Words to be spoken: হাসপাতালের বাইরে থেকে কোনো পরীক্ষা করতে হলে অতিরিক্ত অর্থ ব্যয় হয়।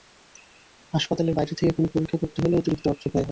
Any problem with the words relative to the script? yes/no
no